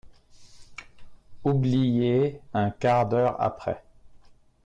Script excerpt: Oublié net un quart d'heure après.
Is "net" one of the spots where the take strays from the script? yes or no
yes